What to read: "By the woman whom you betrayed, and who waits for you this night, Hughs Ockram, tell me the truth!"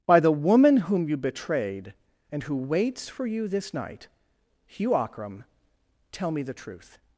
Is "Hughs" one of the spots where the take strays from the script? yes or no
yes